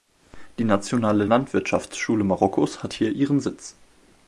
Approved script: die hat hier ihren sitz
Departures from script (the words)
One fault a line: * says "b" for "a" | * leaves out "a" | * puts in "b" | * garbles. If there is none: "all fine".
* puts in "nationale landwirtschaftsschule marokkos"